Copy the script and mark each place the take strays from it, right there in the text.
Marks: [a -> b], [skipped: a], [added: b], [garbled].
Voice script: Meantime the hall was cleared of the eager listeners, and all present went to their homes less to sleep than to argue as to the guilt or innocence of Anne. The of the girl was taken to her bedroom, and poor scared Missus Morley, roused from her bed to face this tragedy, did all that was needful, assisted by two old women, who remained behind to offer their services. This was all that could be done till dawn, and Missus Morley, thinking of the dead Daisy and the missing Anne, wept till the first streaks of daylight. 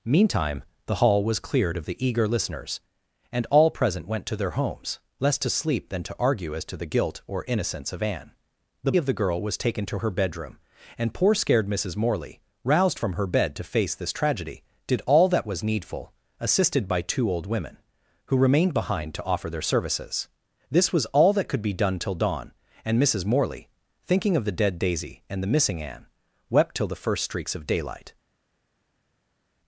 Meantime the hall was cleared of the eager listeners, and all present went to their homes less to sleep than to argue as to the guilt or innocence of Anne. The of the girl was taken to her bedroom, and poor scared Missus Morley, roused from her bed to face this tragedy, did all that was needful, assisted by two old women, who remained behind to offer their services. This was all that could be done till dawn, and Missus Morley, thinking of the dead Daisy and the missing Anne, wept till the first streaks of daylight.